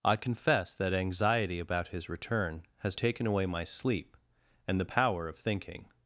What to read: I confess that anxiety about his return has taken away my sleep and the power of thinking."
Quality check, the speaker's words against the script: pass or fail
pass